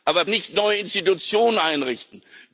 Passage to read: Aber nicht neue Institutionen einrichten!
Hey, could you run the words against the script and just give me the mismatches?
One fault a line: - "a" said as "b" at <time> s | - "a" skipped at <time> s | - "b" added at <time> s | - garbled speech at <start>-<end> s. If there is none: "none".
none